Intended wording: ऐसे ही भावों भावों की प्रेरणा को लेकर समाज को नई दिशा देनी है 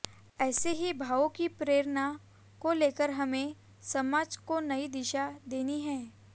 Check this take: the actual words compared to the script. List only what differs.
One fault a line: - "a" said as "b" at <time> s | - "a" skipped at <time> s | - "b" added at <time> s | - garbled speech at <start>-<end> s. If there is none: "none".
- "भावों" skipped at 1.3 s
- "हमें" added at 3.1 s